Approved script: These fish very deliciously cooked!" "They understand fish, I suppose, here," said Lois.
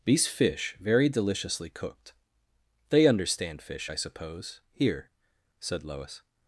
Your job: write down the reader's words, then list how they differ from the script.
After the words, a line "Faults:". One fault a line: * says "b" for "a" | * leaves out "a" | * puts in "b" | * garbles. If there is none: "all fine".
These fish very deliciously cooked!" "They understand fish, I suppose, here," said Lois.
Faults:
all fine